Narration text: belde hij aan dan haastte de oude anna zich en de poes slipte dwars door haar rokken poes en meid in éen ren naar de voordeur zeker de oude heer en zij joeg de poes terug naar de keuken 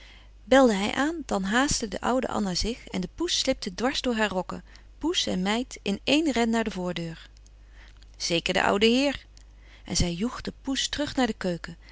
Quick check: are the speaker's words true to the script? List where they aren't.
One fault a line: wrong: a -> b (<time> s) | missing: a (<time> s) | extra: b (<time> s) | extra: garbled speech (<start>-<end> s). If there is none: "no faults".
no faults